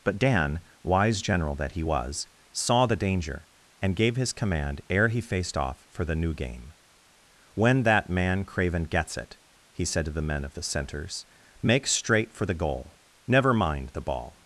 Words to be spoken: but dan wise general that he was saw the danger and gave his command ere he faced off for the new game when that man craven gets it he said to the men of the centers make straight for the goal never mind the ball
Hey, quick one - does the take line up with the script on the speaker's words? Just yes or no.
yes